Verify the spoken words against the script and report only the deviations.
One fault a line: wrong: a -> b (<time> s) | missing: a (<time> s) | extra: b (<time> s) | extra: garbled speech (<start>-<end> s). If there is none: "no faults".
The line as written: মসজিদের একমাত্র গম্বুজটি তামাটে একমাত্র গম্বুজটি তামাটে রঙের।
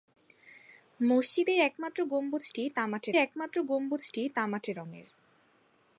no faults